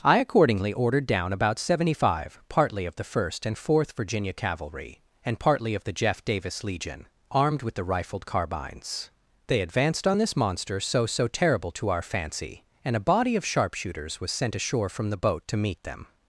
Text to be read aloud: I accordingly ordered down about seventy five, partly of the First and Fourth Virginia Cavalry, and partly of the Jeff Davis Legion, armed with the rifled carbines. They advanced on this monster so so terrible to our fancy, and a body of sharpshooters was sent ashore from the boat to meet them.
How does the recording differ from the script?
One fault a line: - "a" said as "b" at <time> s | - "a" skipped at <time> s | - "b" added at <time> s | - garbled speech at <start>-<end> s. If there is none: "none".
none